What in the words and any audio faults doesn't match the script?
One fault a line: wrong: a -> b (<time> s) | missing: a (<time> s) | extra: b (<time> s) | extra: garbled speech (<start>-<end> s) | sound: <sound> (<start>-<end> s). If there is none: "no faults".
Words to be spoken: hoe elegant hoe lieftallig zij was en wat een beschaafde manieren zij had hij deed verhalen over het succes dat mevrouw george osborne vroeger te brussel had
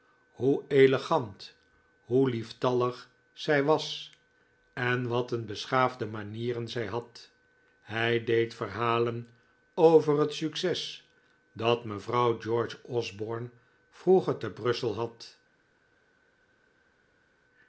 no faults